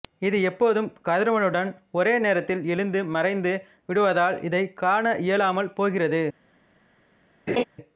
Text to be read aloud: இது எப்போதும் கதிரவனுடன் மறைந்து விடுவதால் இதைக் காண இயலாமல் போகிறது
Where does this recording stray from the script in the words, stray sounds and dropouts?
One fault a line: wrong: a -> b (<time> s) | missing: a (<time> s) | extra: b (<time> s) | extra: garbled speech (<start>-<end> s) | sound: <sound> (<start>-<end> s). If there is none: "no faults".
extra: ஒரே நேரத்தில் எழுந்து (1.9 s)
sound: laugh (7.5-7.6 s)